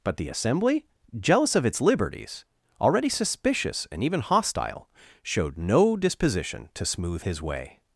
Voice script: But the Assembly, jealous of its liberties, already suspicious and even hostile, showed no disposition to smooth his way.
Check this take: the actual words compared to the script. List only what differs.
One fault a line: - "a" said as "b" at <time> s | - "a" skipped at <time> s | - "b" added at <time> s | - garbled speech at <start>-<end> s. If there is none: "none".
none